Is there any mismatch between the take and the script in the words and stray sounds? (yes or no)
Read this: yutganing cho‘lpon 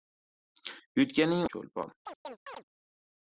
yes